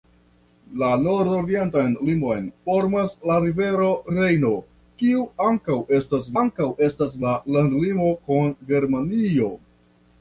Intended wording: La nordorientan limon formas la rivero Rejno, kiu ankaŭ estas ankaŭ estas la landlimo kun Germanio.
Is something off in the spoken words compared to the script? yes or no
no